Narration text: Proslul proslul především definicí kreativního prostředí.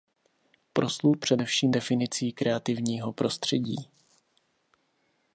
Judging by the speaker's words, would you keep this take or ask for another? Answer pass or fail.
fail